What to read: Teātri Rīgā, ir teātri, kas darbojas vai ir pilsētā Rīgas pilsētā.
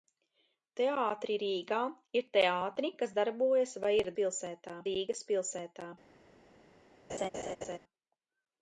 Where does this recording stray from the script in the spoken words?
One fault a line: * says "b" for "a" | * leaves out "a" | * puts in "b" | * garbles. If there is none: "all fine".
all fine